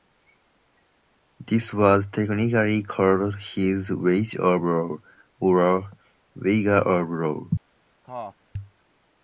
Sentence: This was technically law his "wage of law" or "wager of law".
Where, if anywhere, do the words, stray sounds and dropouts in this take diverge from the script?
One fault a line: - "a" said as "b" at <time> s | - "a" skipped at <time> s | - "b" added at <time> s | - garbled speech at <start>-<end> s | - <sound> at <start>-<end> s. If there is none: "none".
- "law" said as "called" at 2.8 s
- cough at 8.0-8.4 s